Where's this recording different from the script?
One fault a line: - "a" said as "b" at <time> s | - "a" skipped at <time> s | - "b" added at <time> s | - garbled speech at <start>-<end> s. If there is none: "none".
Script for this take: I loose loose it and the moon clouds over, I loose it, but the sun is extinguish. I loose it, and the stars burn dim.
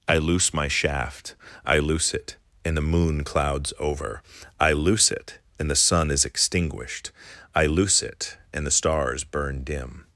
- "my shaft I" added at 0.5 s
- "but" said as "and" at 5.6 s
- "extinguish" said as "extinguished" at 6.3 s